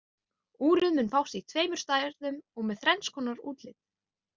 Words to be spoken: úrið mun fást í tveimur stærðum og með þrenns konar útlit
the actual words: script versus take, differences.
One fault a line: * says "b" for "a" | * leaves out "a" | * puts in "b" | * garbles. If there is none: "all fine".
all fine